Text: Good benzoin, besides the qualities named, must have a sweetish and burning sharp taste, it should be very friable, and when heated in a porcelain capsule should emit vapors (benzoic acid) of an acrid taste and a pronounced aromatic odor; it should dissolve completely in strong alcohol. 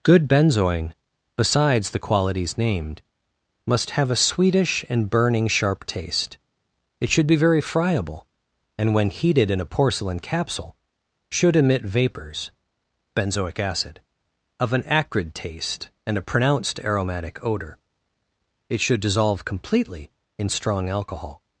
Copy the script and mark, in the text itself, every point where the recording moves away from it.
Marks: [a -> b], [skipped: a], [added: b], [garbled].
Good benzoin, besides the qualities named, must have a sweetish and burning sharp taste, it should be very friable, and when heated in a porcelain capsule should emit vapors (benzoic acid) of an acrid taste and a pronounced aromatic odor; it should dissolve completely in strong alcohol.